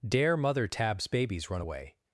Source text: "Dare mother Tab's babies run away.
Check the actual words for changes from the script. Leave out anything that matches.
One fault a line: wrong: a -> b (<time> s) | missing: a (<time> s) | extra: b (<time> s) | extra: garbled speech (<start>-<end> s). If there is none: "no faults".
no faults